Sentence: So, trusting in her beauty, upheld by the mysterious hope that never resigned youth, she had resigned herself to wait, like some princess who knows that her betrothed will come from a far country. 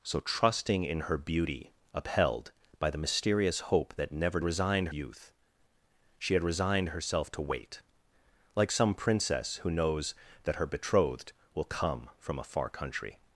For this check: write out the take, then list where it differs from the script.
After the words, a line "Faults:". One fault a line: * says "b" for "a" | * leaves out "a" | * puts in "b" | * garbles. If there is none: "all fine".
So, trusting in her beauty, upheld by the mysterious hope that never resigned youth, she had resigned herself to wait, like some princess who knows that her betrothed will come from a far country.
Faults:
all fine